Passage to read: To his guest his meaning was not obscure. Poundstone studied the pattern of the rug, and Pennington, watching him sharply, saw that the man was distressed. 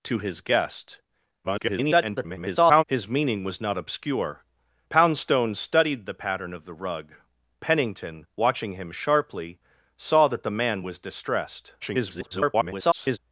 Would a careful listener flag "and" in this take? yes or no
yes